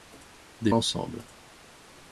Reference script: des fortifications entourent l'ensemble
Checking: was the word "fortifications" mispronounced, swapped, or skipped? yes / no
yes